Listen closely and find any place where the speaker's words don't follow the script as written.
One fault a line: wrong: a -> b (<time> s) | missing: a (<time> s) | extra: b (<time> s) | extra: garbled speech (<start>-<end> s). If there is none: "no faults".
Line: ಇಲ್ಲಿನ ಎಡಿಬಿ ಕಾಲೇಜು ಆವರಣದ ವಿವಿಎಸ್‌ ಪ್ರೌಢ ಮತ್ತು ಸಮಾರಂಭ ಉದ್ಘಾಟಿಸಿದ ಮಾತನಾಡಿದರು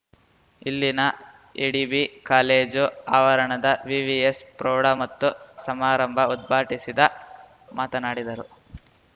no faults